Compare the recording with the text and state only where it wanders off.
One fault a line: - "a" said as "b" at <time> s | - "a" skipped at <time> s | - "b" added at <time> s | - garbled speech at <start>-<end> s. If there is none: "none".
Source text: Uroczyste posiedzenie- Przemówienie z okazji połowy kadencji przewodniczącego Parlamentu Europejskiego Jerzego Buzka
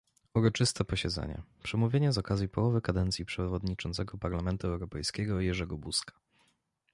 none